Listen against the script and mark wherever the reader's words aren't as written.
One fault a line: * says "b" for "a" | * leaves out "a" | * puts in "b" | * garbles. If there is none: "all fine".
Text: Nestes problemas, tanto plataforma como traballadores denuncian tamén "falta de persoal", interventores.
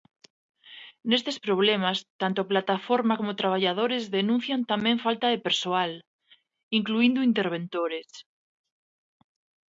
* puts in "incluíndo"